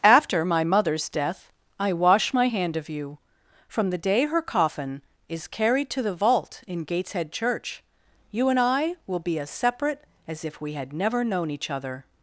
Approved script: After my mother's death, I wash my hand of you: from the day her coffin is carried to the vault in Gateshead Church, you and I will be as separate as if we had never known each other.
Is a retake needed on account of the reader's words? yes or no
no